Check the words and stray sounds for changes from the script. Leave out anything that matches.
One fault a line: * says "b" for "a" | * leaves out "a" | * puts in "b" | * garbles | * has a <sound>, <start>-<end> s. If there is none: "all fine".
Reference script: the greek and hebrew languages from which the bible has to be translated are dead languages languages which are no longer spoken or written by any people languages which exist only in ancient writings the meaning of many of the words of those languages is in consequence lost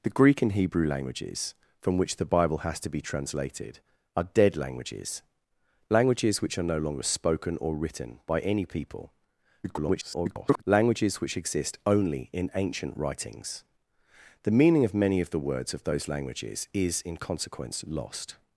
* garbles